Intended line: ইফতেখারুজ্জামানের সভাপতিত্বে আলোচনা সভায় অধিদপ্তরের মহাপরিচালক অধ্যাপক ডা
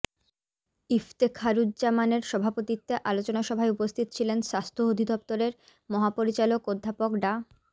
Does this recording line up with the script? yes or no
no